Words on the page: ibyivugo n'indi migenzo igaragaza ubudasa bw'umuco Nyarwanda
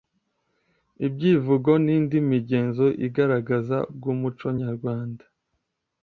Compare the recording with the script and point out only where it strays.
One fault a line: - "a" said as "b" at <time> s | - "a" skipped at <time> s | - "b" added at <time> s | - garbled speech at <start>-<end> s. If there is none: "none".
- "ubudasa" skipped at 3.8 s